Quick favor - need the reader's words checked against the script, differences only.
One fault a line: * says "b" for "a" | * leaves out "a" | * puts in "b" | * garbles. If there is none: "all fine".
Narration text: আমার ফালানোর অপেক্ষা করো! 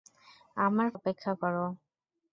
* leaves out "ফালানোর"